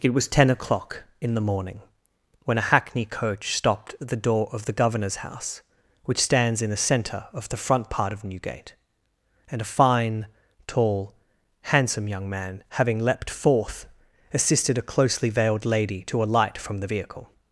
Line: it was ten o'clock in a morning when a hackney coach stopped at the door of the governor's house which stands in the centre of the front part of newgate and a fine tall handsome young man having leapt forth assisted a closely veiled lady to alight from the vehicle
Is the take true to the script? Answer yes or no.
no